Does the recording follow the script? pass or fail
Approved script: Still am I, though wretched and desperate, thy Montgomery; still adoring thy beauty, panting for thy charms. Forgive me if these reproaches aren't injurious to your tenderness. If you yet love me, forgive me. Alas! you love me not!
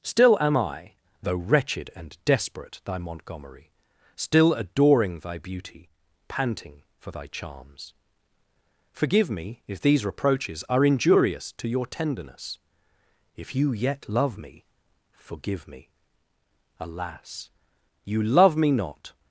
fail